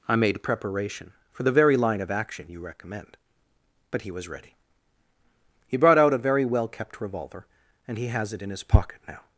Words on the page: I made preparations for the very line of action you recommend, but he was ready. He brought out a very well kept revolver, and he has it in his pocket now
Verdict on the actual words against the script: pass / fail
fail